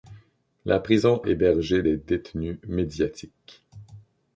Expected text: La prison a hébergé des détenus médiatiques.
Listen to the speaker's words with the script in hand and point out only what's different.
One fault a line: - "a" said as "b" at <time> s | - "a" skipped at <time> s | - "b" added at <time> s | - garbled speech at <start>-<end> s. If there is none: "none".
- "a" skipped at 1.2 s